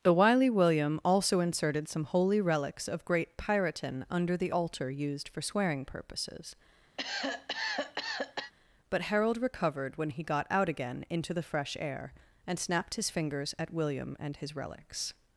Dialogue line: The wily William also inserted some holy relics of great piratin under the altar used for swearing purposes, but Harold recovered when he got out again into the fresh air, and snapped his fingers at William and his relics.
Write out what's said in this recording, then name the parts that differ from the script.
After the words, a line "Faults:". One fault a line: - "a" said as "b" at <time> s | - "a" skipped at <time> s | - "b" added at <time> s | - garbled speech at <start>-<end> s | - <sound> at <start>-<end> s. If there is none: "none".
The wily William also inserted some holy relics of great piratin under the altar used for swearing purposes, but Harold recovered when he got out again into the fresh air, and snapped his fingers at William and his relics.
Faults:
- cough at 7.0-8.5 s